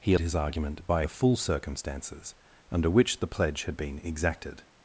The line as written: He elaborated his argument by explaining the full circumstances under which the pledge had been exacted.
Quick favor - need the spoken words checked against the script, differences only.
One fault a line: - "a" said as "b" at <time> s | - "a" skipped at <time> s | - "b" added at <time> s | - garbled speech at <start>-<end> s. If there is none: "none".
- "elaborated" skipped at 0.1 s
- "explaining" skipped at 1.0 s